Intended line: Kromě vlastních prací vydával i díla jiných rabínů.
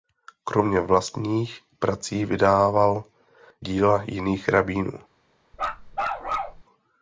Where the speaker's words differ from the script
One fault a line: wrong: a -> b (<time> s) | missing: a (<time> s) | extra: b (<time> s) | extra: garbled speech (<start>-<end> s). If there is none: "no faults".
missing: i (3.0 s)